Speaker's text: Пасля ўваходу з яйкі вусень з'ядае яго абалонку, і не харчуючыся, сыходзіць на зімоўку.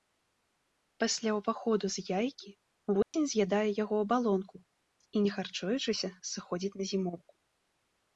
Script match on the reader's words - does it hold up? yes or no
yes